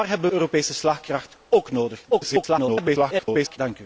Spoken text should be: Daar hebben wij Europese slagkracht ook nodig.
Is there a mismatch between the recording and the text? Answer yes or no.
yes